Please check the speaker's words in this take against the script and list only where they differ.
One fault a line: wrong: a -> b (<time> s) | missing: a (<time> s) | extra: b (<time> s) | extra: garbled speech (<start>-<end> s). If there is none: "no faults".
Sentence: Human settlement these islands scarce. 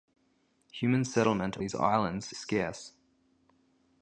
no faults